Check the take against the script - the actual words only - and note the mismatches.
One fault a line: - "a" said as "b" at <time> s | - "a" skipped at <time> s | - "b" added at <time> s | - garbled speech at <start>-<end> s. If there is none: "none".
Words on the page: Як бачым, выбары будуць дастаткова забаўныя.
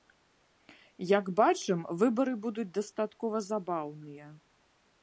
none